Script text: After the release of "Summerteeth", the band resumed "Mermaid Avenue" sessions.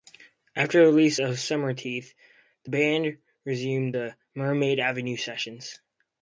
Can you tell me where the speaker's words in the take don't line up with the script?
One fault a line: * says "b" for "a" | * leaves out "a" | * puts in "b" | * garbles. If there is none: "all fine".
* puts in "the"